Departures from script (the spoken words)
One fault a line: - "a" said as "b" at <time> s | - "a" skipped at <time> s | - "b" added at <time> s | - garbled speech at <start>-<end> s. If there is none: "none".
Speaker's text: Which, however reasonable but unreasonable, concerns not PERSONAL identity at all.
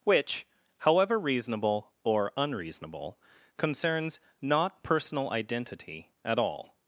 - "but" said as "or" at 2.0 s